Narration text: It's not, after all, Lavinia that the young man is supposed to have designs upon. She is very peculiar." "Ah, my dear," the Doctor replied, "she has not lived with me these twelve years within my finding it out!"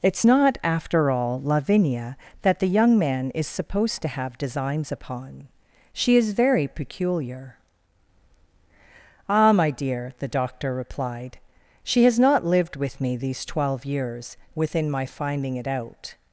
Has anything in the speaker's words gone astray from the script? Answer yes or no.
no